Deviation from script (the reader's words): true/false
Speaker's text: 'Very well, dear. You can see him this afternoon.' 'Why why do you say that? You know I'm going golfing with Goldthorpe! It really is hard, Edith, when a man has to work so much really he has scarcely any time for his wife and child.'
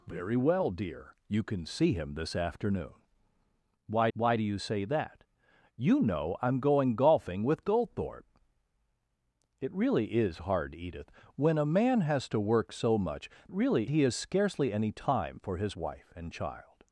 false